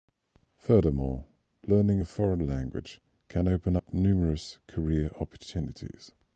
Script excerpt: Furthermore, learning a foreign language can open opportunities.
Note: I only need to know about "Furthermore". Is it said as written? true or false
true